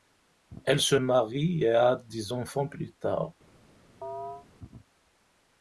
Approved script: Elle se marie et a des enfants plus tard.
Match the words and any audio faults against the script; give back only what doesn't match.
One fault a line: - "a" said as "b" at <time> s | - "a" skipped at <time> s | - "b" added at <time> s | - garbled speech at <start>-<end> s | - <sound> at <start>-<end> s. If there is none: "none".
- chirp at 4.0-4.5 s